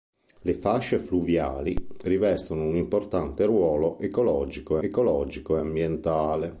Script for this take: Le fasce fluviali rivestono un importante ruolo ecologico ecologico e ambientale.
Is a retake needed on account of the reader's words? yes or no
no